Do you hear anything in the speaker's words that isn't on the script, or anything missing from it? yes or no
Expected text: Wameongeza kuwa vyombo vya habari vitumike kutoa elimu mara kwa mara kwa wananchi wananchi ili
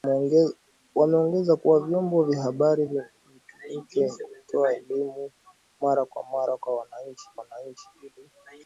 no